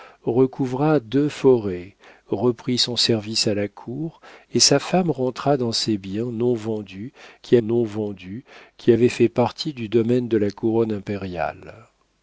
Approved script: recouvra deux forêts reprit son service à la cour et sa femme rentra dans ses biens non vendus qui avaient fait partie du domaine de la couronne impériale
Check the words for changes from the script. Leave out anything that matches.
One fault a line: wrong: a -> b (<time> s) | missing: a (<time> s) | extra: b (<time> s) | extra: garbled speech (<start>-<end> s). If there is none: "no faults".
extra: non vendus qui (7.6 s)